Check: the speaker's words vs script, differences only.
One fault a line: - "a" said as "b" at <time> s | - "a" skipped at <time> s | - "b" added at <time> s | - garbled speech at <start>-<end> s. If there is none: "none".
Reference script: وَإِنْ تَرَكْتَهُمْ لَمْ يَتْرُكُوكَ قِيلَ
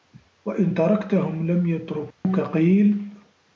none